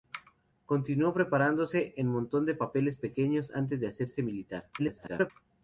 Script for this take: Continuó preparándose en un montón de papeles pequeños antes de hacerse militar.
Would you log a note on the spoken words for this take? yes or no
yes